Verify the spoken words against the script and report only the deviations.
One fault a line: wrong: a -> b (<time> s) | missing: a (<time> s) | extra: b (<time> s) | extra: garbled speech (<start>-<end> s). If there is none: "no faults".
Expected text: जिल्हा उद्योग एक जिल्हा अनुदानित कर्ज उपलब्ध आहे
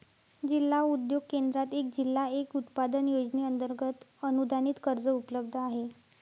extra: केंद्रात (1.3 s)
extra: एक उत्पादन योजनेअंतर्गत (2.4 s)